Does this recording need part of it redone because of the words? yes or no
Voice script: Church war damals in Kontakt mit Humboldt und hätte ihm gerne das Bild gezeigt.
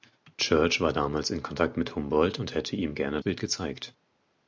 yes